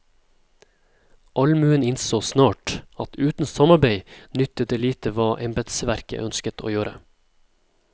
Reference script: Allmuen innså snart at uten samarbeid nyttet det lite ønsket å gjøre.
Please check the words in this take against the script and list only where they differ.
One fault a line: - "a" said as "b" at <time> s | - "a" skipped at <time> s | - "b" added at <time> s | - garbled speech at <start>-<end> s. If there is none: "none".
- "hva embetsverket" added at 5.2 s